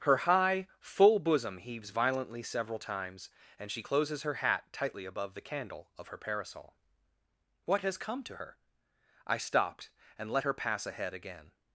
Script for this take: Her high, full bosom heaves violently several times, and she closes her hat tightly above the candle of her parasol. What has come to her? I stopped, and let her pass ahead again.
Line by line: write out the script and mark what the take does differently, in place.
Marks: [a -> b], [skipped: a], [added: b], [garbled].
Her high, full bosom heaves violently several times, and she closes her hat tightly above the candle of her parasol. What has come to her? I stopped, and let her pass ahead again.